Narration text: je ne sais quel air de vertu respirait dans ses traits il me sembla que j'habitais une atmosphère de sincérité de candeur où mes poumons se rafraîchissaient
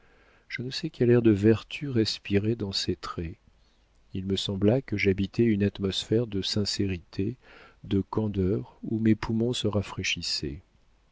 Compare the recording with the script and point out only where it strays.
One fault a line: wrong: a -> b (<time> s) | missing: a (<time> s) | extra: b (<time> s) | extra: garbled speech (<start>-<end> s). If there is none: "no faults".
no faults